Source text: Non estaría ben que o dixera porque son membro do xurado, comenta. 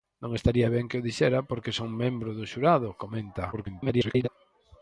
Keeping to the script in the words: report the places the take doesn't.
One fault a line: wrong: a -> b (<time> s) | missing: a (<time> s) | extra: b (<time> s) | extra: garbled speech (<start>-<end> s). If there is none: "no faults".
extra: garbled speech (3.5-4.3 s)